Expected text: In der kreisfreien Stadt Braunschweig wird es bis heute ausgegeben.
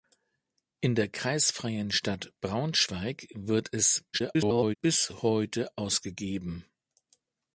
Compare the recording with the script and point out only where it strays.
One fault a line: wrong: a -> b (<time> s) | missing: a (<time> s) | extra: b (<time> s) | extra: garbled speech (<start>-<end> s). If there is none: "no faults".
extra: garbled speech (4.1-4.8 s)